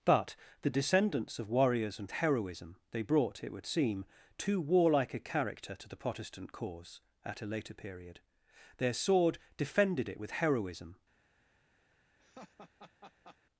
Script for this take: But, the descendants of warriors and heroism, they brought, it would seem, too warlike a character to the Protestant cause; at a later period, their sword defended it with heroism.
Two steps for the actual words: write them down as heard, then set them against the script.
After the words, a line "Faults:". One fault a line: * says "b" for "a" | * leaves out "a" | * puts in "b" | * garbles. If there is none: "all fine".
But, the descendants of warriors and heroism, they brought, it would seem, too warlike a character to the Protestant cause; at a later period, their sword defended it with heroism.
Faults:
all fine